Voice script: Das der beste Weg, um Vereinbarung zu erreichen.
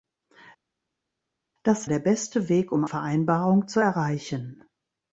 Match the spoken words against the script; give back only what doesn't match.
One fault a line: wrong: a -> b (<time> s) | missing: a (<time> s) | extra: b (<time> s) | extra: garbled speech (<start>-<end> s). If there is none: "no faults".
no faults